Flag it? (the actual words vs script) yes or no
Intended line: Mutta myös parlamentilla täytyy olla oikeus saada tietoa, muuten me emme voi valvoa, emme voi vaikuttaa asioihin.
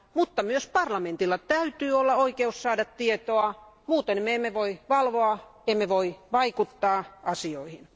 no